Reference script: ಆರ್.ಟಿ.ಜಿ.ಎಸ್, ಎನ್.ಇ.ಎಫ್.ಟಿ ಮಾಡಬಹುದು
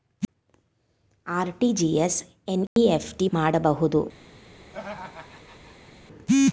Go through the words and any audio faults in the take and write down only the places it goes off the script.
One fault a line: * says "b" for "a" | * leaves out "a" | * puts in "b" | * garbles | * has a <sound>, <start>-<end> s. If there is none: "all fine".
* has a dropout, 2.7-2.8 s
* has a laugh, 4.7-5.9 s